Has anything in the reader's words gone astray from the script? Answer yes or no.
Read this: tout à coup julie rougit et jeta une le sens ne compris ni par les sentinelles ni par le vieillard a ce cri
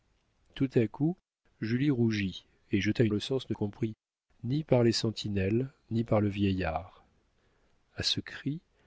no